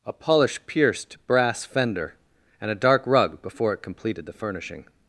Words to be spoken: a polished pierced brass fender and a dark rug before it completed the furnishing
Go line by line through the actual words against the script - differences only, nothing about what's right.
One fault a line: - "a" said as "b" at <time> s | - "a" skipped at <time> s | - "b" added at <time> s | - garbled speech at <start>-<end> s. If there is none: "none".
- "polished" said as "polish" at 0.1 s